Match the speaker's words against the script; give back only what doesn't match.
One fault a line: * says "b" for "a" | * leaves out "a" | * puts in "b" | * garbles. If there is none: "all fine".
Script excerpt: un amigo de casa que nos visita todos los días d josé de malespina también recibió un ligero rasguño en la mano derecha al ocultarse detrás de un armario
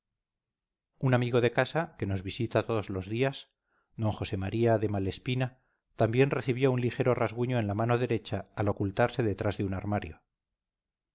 * puts in "maría"